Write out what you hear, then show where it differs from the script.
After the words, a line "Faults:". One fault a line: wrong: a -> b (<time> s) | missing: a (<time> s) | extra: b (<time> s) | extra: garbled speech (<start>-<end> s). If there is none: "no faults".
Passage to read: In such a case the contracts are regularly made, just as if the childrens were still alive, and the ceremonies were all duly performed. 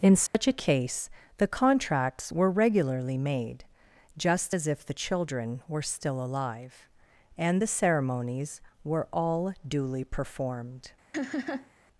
In such a case the contracts were regularly made, just as if the children were still alive, and the ceremonies were all duly performed.
Faults:
wrong: are -> were (2.3 s)
wrong: childrens -> children (4.9 s)